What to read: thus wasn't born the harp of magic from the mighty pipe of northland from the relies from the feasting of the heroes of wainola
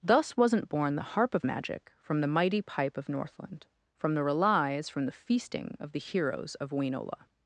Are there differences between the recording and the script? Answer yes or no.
no